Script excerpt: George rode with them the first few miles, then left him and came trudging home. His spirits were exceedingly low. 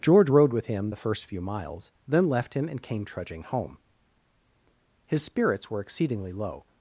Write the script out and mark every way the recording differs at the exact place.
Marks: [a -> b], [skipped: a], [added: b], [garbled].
George rode with [them -> him] the first few miles, then left him and came trudging home. His spirits were exceedingly low.